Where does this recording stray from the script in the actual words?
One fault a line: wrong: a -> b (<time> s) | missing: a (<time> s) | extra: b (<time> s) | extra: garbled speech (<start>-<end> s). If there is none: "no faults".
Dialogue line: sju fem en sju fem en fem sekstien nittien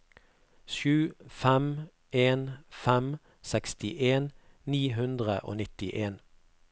wrong: sju fem en fem sekstien -> fem sekstien ni hundre og (2.7 s)